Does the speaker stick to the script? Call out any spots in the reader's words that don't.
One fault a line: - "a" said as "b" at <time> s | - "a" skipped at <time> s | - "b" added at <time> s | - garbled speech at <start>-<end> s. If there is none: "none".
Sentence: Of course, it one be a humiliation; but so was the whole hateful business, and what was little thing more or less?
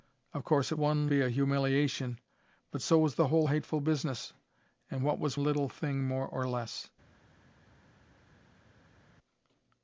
none